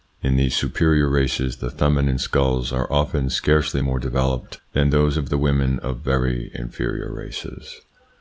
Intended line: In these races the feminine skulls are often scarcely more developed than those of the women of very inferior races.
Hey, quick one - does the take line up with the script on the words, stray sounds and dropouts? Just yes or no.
no